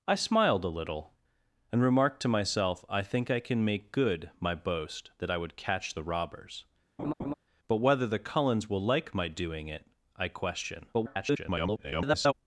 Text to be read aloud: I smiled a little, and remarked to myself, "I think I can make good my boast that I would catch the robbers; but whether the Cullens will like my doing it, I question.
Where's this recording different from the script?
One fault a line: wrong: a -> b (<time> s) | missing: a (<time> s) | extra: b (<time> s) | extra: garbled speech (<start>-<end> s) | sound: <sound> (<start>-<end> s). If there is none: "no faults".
sound: laugh (7.0-7.3 s)
extra: garbled speech (10.9-12.3 s)